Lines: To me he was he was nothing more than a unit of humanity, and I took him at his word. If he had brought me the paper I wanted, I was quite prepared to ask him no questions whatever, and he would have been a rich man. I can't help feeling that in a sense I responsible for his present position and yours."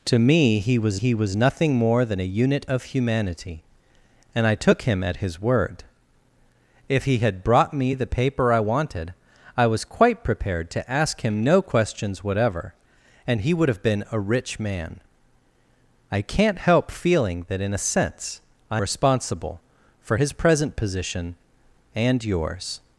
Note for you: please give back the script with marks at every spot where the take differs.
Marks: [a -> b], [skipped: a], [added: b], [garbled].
To me he was he was nothing more than a unit of humanity, and I took him at his word. If he had brought me the paper I wanted, I was quite prepared to ask him no questions whatever, and he would have been a rich man. I can't help feeling that in a sense I responsible for his present position and yours."